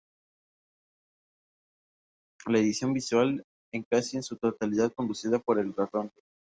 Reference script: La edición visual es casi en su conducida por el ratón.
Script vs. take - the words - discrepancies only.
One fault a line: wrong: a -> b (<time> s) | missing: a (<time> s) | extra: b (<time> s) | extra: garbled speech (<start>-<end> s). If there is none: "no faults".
extra: totalidad (4.4 s)